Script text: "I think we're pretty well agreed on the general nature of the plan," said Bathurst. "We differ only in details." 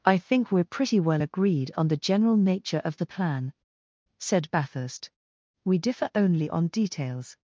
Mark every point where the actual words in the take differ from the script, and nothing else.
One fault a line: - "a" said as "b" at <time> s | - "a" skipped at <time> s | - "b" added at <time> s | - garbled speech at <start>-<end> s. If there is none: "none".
- "in" said as "on" at 6.5 s